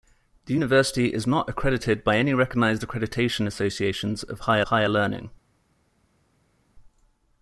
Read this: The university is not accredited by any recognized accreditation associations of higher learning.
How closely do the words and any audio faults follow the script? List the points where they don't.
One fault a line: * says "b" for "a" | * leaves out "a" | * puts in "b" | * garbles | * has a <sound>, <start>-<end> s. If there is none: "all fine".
* puts in "higher"